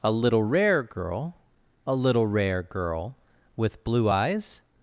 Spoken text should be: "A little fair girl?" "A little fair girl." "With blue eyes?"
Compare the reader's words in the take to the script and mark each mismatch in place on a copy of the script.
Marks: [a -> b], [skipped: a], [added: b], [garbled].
"A little [fair -> rare] girl?" "A little [fair -> rare] girl." "With blue eyes?"